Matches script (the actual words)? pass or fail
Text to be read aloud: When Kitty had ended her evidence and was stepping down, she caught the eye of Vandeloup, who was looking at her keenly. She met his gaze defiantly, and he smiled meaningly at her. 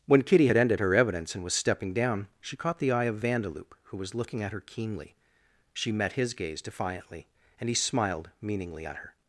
pass